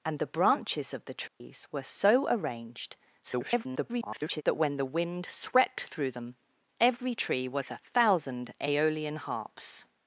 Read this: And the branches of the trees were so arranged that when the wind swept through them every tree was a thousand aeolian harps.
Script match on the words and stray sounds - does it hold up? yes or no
no